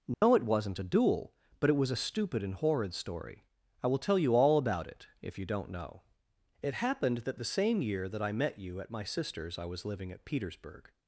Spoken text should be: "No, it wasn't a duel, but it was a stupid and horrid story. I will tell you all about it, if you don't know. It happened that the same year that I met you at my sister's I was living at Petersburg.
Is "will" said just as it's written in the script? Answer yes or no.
yes